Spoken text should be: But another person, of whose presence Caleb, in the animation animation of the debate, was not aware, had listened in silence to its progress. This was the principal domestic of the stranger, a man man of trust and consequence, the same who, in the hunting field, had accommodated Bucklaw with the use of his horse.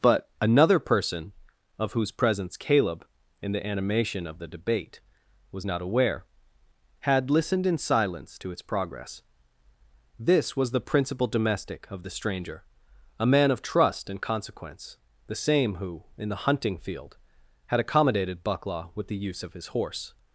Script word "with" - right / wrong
right